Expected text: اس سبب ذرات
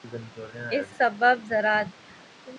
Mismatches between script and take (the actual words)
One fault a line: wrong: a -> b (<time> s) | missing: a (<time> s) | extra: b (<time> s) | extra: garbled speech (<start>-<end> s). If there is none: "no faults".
no faults